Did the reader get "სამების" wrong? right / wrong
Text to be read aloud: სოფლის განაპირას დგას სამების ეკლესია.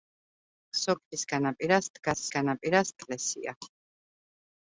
wrong